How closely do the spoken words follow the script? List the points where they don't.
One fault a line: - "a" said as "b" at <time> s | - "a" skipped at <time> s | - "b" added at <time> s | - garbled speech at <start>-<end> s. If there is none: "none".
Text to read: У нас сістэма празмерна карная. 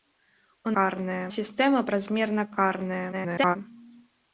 - "нас" said as "карная" at 0.7 s
- garbled speech at 3.1-3.6 s